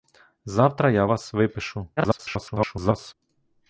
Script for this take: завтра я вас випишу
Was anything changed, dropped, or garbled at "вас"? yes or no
no